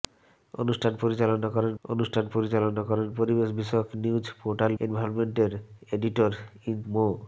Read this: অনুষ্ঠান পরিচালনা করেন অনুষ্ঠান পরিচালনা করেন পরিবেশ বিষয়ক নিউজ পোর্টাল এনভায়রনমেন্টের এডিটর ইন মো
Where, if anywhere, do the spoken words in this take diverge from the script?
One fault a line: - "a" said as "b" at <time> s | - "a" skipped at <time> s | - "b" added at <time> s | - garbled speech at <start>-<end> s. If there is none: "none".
none